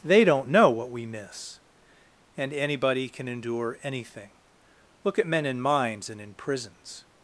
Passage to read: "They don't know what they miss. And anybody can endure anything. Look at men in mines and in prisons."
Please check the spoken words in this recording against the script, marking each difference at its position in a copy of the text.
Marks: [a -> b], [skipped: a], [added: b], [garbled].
"They don't know what [they -> we] miss. And anybody can endure anything. Look at men in mines and in prisons."